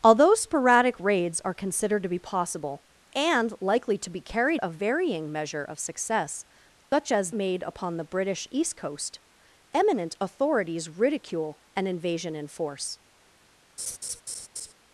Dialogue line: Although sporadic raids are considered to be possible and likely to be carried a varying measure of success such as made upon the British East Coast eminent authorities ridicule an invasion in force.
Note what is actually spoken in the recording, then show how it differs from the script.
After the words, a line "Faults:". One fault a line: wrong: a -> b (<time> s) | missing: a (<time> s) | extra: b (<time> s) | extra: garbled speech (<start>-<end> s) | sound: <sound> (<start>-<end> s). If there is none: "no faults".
Although sporadic raids are considered to be possible and likely to be carried a varying measure of success such as made upon the British East Coast eminent authorities ridicule an invasion in force.
Faults:
sound: dropout (6.8-6.9 s)
sound: laugh (13.8-14.7 s)